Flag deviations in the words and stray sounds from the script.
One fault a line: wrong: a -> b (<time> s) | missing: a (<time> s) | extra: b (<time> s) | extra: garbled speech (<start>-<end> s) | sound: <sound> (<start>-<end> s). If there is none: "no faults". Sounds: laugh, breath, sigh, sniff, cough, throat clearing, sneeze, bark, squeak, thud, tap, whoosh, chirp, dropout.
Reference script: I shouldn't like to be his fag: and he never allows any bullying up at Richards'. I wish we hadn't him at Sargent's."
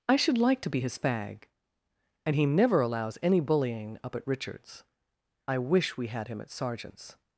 wrong: shouldn't -> should (0.2 s)
wrong: hadn't -> had (6.1 s)